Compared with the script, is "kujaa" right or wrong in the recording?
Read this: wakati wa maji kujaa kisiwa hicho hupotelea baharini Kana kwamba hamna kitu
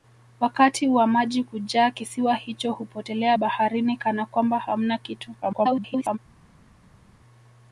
right